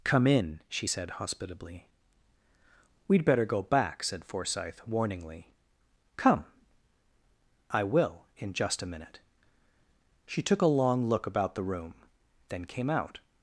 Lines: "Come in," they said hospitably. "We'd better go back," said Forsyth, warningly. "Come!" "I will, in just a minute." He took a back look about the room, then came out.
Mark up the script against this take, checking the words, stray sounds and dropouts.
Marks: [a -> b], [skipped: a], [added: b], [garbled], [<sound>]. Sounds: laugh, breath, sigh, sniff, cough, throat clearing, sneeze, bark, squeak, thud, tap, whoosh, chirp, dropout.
"Come in," [they -> she] said hospitably. "We'd better go back," said Forsyth, warningly. "Come!" "I will, in just a minute." [He -> She] took a [back -> long] look about the room, then came out.